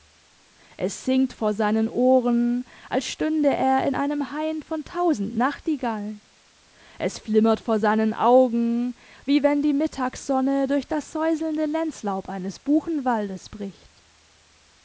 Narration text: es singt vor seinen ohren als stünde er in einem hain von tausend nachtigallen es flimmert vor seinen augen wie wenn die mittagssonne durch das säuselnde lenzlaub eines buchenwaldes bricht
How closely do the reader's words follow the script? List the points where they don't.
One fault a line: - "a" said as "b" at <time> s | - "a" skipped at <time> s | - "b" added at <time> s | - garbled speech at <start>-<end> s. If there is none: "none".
none